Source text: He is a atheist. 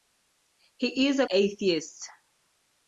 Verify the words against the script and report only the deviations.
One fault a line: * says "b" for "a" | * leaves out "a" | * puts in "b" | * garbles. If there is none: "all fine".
all fine